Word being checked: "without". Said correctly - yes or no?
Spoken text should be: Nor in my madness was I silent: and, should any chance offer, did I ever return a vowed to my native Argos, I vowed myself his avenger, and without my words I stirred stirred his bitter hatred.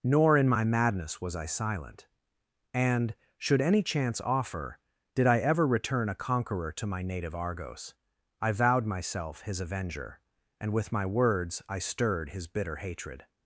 no